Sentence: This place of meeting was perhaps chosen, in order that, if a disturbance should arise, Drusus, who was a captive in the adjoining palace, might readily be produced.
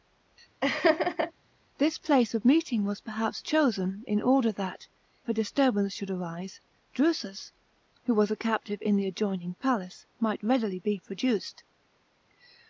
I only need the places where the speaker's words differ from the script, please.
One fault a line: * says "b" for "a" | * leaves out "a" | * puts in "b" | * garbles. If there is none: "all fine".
* leaves out "if"